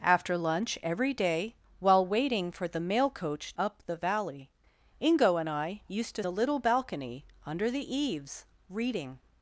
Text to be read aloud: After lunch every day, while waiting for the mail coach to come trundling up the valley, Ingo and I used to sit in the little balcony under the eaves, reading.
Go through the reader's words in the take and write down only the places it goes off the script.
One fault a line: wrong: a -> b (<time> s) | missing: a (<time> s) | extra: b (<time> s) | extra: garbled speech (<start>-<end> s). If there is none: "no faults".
missing: to come trundling (3.5 s)
missing: sit in (6.2 s)